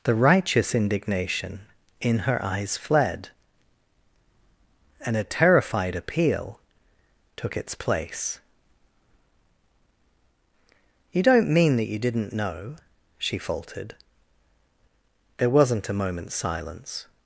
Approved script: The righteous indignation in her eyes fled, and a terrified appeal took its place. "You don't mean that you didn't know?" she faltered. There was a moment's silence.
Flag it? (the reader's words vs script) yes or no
yes